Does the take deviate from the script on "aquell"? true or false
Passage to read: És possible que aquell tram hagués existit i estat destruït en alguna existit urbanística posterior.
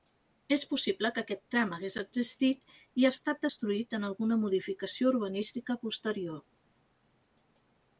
true